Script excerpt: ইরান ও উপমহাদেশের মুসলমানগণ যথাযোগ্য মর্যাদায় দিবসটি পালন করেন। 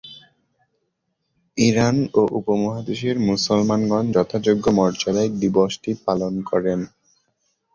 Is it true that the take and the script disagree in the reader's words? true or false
false